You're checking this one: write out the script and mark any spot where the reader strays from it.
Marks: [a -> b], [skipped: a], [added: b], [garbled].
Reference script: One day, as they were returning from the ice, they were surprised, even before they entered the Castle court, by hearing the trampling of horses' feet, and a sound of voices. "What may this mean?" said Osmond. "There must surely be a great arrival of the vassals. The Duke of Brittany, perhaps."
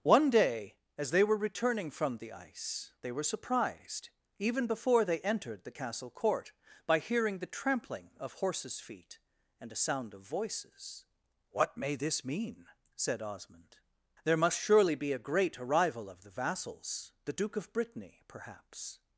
One day, as they were returning from the ice, they were surprised, even before they entered the Castle court, by hearing the trampling of horses' feet, and a sound of voices. "What may this mean?" said Osmond. "There must surely be a great arrival of the vassals. The Duke of Brittany, perhaps."